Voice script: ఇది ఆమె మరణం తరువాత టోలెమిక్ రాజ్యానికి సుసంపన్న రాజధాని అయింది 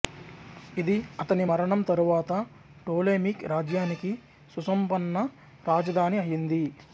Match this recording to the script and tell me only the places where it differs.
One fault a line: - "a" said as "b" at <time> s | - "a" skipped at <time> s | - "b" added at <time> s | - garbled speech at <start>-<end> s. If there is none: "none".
- "ఆమె" said as "అతని" at 1.2 s